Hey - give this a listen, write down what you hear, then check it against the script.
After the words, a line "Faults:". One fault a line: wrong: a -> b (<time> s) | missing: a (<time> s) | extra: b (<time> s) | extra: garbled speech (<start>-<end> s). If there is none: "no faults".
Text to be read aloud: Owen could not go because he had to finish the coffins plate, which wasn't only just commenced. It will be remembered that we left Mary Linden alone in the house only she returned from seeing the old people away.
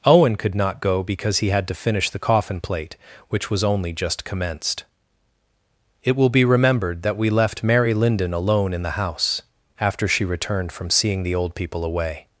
Owen could not go because he had to finish the coffin plate, which was only just commenced. It will be remembered that we left Mary Linden alone in the house after she returned from seeing the old people away.
Faults:
wrong: coffins -> coffin (2.2 s)
wrong: wasn't -> was (3.5 s)
wrong: only -> after (9.8 s)